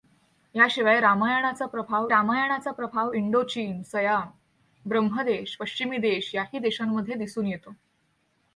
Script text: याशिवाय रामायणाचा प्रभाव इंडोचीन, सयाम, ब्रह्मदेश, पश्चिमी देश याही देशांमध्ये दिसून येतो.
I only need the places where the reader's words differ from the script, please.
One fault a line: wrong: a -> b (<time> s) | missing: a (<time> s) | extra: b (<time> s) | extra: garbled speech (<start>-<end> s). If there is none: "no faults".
extra: रामायणाचा प्रभाव (2.1 s)